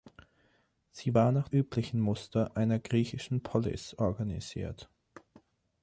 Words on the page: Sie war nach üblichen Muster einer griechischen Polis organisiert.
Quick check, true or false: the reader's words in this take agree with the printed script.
true